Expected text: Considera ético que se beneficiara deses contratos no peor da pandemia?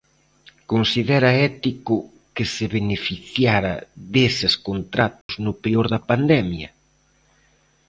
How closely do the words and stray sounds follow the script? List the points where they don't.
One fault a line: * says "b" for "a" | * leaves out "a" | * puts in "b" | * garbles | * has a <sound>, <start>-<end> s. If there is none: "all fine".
* has a dropout, 5.2-5.3 s